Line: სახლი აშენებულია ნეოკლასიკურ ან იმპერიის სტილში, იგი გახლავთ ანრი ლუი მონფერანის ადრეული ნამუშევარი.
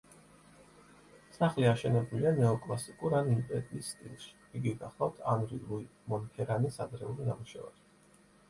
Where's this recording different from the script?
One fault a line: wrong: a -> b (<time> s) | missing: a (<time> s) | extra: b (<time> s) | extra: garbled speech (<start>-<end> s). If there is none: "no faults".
no faults